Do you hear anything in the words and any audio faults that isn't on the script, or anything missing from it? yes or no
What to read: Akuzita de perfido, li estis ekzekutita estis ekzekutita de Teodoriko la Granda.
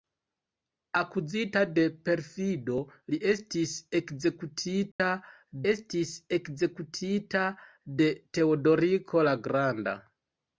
yes